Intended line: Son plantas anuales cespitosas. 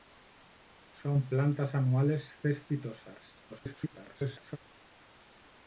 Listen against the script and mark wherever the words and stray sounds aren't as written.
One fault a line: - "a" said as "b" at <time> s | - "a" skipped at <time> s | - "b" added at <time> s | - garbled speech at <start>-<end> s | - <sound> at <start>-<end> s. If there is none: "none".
- garbled speech at 3.5-4.6 s